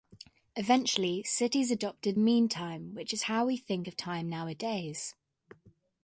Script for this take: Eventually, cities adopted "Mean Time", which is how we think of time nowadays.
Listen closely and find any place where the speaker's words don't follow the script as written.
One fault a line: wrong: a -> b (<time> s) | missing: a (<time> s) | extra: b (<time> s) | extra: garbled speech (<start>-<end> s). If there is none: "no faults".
no faults